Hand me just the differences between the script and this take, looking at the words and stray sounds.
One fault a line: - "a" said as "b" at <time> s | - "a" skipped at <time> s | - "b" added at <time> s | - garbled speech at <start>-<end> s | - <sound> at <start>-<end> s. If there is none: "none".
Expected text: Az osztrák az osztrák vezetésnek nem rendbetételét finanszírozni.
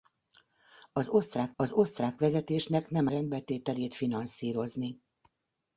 none